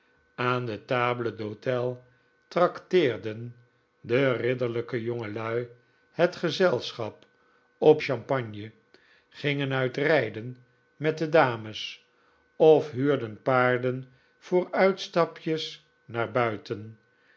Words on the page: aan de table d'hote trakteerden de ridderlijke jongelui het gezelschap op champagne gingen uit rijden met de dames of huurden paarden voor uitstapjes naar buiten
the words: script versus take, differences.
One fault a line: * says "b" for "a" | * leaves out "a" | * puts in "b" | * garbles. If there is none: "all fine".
all fine